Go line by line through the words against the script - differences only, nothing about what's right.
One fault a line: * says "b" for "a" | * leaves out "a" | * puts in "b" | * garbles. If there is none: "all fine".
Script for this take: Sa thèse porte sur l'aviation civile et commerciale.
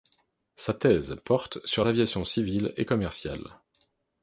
all fine